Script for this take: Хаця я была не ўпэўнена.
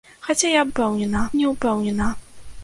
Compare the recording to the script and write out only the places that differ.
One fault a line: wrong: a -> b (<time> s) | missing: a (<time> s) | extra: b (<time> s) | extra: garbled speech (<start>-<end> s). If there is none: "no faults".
wrong: была -> ўпэўнена (0.7 s)